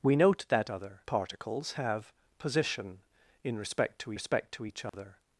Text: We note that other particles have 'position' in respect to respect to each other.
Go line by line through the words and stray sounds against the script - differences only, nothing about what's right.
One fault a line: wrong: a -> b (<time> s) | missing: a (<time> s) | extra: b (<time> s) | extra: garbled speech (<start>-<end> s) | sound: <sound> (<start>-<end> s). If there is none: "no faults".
sound: dropout (4.9-4.9 s)